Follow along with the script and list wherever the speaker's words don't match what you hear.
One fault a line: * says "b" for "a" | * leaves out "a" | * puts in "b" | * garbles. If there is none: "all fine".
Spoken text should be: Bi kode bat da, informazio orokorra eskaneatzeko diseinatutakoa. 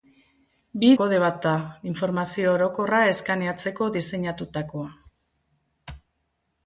all fine